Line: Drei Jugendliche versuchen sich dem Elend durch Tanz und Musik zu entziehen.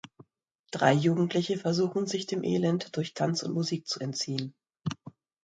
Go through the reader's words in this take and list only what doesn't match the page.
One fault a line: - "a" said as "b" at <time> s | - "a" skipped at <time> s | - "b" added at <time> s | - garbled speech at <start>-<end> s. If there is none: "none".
none